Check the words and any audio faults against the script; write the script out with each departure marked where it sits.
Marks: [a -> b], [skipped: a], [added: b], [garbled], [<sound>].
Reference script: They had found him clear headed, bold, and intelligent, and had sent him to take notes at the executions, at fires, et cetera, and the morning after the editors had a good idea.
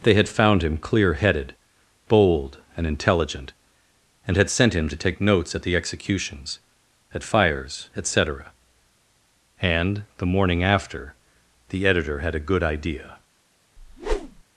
They had found him clear headed, bold, and intelligent, and had sent him to take notes at the executions, at fires, et cetera, and the morning after the [editors -> editor] had a good idea. [whoosh]